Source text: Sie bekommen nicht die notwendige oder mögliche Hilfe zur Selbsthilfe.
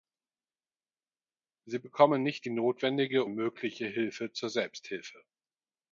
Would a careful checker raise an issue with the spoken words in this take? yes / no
yes